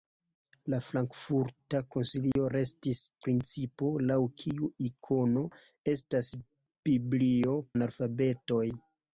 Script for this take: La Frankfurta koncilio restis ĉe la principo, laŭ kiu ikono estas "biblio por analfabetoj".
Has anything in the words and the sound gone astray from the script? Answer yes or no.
yes